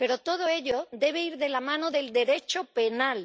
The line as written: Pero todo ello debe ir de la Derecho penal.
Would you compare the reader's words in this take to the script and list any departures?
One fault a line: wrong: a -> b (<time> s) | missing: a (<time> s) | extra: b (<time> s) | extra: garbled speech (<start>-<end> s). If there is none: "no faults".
extra: mano del (1.6 s)